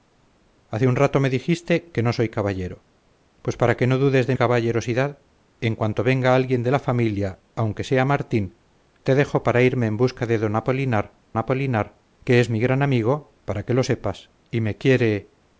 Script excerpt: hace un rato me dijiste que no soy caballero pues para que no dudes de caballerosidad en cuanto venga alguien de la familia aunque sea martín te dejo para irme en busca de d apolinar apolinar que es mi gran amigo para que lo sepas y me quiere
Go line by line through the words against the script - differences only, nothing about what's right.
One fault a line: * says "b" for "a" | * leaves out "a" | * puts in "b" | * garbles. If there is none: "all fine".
all fine